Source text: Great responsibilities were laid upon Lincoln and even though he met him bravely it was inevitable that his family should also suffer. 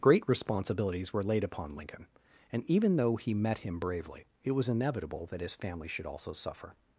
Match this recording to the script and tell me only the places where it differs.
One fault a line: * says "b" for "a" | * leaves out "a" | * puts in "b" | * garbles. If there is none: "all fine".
all fine